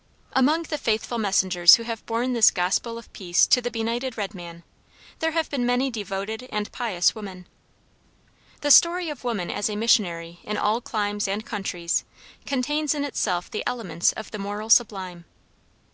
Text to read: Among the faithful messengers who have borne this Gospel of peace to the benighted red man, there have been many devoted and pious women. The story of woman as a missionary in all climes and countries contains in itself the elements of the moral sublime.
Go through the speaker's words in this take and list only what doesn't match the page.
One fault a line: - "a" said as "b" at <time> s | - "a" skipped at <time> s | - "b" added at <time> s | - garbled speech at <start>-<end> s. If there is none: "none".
none